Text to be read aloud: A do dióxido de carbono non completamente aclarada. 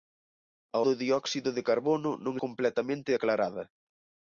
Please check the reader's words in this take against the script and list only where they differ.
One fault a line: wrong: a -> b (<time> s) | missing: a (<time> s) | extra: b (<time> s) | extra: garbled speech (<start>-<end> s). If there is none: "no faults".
no faults